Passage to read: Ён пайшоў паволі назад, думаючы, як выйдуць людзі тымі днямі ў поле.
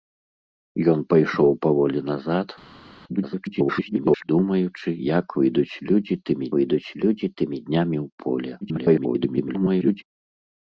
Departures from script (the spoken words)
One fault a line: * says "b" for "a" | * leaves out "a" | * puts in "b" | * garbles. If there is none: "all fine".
* garbles
* puts in "выйдуць людзі тымі"
* garbles